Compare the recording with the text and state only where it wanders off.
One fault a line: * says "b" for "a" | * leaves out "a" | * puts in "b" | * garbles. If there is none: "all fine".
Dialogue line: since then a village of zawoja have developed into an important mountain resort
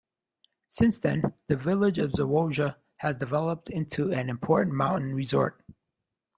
* says "the" for "a"
* says "has" for "have"